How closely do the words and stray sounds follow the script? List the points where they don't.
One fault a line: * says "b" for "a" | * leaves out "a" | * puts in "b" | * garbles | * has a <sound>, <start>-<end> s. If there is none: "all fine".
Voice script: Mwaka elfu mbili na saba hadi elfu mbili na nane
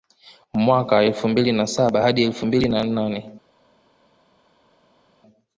all fine